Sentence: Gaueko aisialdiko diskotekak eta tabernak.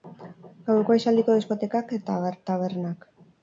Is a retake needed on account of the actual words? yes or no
no